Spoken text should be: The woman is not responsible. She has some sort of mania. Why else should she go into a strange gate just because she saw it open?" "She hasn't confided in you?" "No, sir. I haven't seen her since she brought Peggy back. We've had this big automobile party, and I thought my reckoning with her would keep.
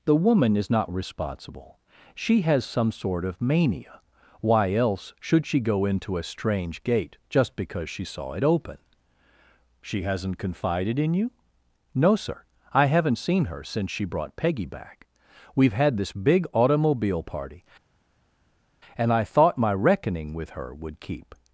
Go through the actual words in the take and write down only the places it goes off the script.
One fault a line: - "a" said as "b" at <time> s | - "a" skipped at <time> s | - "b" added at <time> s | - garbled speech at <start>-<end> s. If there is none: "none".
none